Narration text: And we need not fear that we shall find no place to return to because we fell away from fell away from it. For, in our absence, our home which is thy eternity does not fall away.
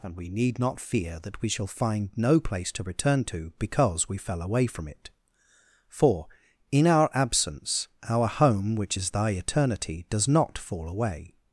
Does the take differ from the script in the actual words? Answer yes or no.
yes